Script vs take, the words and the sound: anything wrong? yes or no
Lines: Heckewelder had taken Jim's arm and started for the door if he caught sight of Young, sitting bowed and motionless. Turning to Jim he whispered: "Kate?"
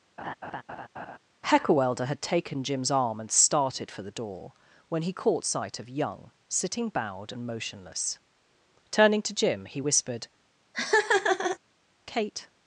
yes